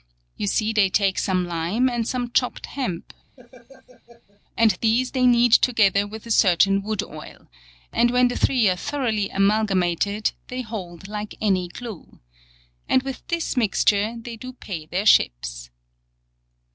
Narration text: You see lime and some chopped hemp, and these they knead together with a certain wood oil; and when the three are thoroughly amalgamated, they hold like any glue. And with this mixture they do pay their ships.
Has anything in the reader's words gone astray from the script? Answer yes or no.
yes